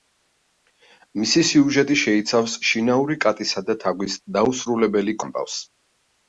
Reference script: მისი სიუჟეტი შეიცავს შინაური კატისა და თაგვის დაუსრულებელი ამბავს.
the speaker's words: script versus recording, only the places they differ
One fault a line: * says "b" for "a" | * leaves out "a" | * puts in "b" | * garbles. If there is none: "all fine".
all fine